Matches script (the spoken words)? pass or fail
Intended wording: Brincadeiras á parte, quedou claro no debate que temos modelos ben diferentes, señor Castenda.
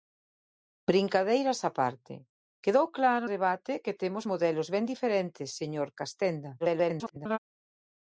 fail